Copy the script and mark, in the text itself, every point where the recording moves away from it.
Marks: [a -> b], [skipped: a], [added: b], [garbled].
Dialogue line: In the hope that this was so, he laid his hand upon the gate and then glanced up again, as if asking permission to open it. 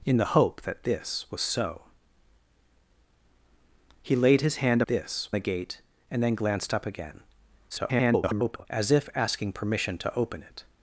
In the hope that this was so, he laid his hand [upon -> this] the gate and then glanced up again, [garbled] as if asking permission to open it.